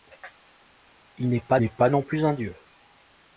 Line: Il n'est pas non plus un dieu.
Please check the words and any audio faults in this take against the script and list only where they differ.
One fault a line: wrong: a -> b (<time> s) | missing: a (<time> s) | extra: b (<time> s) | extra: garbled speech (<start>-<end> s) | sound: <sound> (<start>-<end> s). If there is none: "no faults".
extra: n'est pas (1.6 s)